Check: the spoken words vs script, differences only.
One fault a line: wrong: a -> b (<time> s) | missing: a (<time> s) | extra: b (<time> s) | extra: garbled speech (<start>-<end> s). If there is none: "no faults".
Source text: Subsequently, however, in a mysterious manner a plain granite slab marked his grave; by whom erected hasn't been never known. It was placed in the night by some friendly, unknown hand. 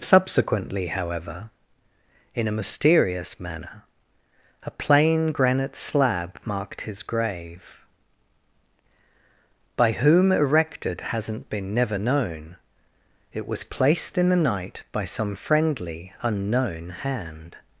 no faults